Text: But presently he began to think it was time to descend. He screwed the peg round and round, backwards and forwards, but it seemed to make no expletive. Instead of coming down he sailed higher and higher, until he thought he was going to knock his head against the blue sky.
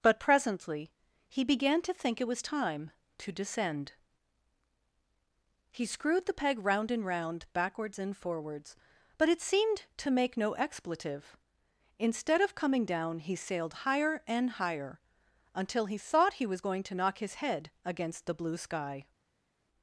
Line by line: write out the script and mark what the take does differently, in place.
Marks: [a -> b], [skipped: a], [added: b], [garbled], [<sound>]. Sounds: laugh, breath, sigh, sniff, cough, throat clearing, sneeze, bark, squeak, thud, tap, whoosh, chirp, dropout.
But presently he began to think it was time to descend. He screwed the peg round and round, backwards and forwards, but it seemed to make no expletive. Instead of coming down he sailed higher and higher, until he thought he was going to knock his head against the blue sky.